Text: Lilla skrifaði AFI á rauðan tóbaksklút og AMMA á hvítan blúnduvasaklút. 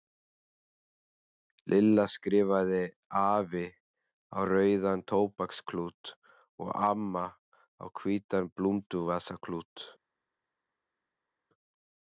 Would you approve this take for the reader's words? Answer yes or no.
yes